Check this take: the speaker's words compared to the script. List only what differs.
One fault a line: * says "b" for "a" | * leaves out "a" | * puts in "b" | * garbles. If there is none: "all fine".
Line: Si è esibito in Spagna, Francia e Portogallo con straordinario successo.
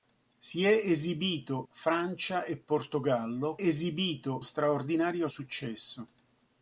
* leaves out "in Spagna"
* says "esibito" for "con"